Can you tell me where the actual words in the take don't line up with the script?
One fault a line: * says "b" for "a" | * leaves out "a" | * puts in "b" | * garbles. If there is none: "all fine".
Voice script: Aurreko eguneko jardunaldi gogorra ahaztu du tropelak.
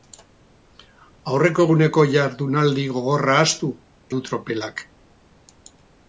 all fine